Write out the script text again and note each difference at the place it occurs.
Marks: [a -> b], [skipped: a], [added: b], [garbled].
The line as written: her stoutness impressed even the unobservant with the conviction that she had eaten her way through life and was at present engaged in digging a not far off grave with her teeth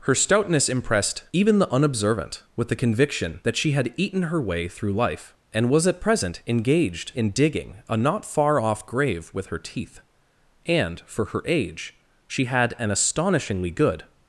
her stoutness impressed even the unobservant with the conviction that she had eaten her way through life and was at present engaged in digging a not far off grave with her teeth [added: and for her age she had an astonishingly good]